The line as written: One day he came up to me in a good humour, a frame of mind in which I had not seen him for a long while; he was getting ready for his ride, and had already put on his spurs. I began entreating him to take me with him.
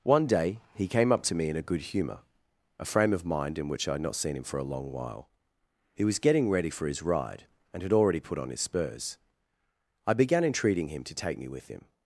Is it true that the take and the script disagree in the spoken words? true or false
false